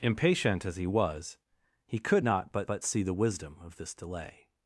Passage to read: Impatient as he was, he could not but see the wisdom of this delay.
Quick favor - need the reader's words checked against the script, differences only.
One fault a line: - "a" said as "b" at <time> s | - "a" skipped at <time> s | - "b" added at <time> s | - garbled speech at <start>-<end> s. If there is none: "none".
- "but" added at 2.7 s